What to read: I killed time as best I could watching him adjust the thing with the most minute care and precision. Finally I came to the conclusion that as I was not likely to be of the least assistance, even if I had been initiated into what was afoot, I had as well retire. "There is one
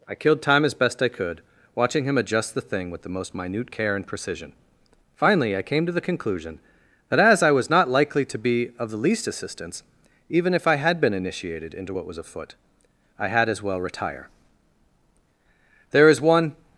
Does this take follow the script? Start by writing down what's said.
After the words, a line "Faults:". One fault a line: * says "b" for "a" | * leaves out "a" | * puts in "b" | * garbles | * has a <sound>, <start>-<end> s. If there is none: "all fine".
I killed time as best I could watching him adjust the thing with the most minute care and precision. Finally I came to the conclusion that as I was not likely to be of the least assistance, even if I had been initiated into what was afoot, I had as well retire. "There is one
Faults:
all fine